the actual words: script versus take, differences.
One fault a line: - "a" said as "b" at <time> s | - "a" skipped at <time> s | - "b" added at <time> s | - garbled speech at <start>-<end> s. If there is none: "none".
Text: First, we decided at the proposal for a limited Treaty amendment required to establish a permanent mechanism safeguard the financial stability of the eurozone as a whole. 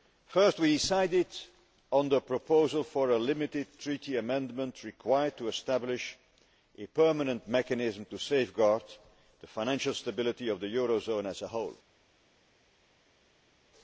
- "at" said as "on" at 1.9 s
- "to" added at 8.1 s